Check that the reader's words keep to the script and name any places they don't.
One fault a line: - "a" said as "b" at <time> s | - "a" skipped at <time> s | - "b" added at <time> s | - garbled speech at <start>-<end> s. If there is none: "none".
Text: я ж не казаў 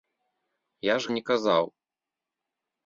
none